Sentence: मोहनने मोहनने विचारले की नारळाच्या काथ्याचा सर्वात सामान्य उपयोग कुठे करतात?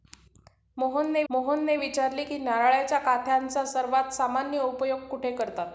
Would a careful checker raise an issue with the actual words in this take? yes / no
no